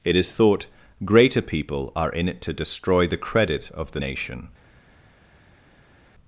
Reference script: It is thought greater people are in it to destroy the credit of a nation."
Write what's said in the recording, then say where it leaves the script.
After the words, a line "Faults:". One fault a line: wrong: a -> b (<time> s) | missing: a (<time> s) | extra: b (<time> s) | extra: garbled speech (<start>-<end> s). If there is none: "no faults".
It is thought greater people are in it to destroy the credit of the nation."
Faults:
wrong: a -> the (3.9 s)